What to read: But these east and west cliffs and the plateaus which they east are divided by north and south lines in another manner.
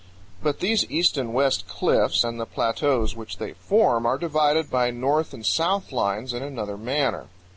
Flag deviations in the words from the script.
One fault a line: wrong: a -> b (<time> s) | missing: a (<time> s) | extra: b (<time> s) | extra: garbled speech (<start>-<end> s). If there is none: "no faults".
wrong: east -> form (3.5 s)